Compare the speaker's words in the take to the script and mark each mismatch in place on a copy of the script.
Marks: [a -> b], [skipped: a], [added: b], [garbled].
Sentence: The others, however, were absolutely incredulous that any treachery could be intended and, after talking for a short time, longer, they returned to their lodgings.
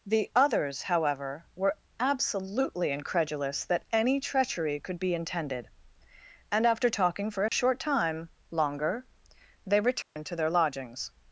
The others, however, were absolutely incredulous that any treachery could be intended and, after talking for a short time, longer, they returned to their lodgings.